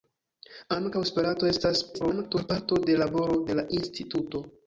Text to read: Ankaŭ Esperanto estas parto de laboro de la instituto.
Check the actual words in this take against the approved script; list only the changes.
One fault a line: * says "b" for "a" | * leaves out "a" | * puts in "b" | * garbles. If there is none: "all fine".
* garbles